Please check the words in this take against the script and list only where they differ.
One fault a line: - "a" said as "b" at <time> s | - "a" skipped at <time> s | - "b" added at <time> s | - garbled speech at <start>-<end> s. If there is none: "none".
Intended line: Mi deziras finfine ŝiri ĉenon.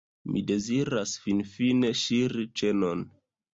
none